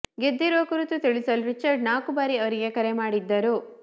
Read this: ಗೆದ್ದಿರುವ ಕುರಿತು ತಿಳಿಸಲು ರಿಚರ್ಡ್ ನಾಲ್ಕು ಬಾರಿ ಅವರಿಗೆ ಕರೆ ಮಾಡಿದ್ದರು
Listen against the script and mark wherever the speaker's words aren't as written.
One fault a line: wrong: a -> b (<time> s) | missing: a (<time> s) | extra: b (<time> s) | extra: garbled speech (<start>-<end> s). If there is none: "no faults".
no faults